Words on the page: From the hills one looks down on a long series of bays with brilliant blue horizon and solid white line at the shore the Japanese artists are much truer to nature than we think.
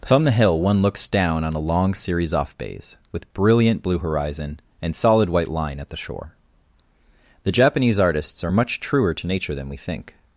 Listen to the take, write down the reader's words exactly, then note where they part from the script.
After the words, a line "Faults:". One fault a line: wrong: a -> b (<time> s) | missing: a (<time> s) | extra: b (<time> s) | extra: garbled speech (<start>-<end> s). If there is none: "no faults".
From the hill one looks down on a long series off bays with brilliant blue horizon and solid white line at the shore the Japanese artists are much truer to nature than we think.
Faults:
wrong: hills -> hill (0.3 s)
wrong: of -> off (2.3 s)